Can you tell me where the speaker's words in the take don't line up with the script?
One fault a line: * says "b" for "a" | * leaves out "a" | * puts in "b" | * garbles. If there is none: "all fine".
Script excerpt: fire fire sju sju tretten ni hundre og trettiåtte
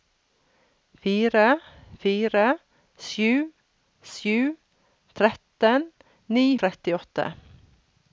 * leaves out "hundre og"